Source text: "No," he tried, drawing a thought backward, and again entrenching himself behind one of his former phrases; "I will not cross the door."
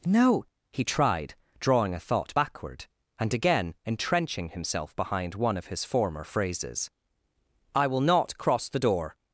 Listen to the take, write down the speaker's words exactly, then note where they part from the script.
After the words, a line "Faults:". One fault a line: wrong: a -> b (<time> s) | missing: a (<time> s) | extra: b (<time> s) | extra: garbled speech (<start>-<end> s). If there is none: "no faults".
"No," he tried, drawing a thought backward, and again entrenching himself behind one of his former phrases; "I will not cross the door."
Faults:
no faults